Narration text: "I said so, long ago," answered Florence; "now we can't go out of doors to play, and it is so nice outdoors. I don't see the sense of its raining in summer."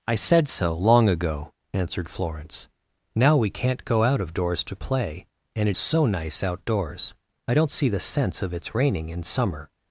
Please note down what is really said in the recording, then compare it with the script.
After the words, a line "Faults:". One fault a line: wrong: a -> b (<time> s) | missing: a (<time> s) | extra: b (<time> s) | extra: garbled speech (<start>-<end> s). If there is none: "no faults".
"I said so, long ago," answered Florence; "now we can't go out of doors to play, and it so nice outdoors. I don't see the sense of its raining in summer."
Faults:
missing: is (5.8 s)